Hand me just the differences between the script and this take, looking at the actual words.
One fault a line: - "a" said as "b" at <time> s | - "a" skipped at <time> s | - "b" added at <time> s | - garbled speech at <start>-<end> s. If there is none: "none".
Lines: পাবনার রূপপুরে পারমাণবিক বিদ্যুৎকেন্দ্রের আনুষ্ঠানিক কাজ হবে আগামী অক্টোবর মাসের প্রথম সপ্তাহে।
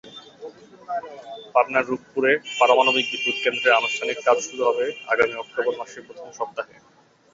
- "শুরু" added at 4.5 s